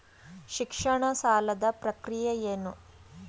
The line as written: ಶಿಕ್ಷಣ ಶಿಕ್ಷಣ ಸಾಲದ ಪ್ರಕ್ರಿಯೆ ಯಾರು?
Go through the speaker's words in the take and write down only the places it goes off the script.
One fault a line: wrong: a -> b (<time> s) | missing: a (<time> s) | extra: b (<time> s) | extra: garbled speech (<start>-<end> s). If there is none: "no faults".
missing: ಶಿಕ್ಷಣ (1.0 s)
wrong: ಯಾರು -> ಏನು (2.5 s)